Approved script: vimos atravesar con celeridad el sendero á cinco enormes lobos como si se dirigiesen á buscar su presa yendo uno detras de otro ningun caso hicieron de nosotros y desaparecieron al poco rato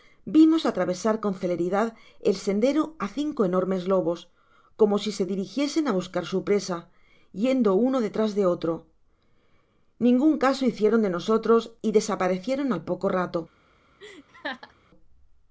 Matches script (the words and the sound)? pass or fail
fail